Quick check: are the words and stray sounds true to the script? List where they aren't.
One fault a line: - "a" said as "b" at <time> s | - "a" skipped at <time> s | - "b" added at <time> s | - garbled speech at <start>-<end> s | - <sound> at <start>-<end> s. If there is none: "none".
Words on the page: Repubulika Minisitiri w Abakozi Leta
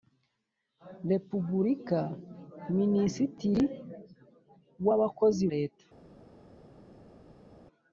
none